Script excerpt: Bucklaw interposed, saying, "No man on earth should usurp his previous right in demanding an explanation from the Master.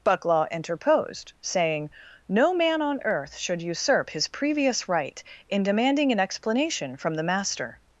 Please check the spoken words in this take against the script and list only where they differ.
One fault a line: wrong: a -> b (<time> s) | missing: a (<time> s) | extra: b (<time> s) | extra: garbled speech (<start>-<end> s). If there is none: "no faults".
no faults